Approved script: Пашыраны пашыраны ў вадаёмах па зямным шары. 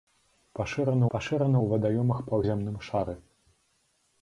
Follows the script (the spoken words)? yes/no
yes